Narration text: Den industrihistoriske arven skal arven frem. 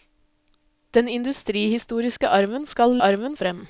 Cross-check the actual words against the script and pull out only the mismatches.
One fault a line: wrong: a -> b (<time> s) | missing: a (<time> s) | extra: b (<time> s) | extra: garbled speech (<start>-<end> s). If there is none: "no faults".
no faults